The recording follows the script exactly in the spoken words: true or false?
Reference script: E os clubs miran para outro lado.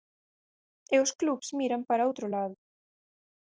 true